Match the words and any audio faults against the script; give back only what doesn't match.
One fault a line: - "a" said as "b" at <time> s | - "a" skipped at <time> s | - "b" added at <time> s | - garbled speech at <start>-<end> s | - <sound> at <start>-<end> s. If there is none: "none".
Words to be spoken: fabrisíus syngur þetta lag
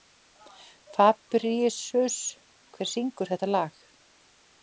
- "hver" added at 2.8 s